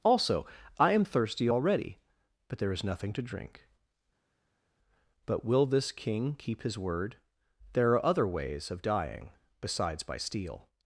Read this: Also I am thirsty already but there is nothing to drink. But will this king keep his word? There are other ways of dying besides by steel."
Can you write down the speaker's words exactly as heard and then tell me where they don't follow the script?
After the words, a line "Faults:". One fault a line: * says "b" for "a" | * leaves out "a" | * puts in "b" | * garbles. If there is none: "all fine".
Also I am thirsty already but there is nothing to drink. But will this king keep his word? There are other ways of dying besides by steel."
Faults:
all fine